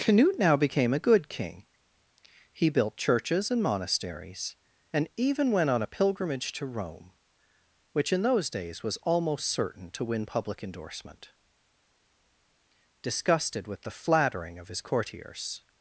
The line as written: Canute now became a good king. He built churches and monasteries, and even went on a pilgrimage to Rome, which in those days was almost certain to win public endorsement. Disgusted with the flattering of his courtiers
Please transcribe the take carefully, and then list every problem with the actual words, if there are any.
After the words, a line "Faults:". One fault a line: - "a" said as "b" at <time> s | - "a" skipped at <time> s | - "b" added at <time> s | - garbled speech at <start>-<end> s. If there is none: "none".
Canute now became a good king. He built churches and monasteries, and even went on a pilgrimage to Rome, which in those days was almost certain to win public endorsement. Disgusted with the flattering of his courtiers
Faults:
none